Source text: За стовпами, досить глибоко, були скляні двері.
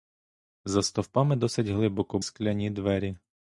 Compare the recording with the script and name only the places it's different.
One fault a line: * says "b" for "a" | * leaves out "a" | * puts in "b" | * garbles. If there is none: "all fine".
* leaves out "були"